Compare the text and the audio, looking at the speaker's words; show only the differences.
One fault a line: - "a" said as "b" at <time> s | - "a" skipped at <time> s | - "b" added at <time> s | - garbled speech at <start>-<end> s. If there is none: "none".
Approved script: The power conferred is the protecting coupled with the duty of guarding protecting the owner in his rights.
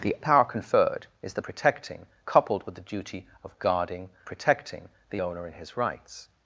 none